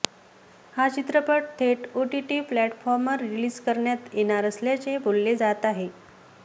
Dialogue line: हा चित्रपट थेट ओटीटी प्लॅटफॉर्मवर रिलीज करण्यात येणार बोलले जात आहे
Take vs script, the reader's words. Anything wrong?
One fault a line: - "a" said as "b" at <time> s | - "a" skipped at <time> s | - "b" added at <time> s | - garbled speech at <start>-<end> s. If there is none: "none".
- "असल्याचे" added at 4.5 s